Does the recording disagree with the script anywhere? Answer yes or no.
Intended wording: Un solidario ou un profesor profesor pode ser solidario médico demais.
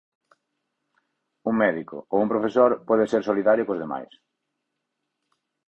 yes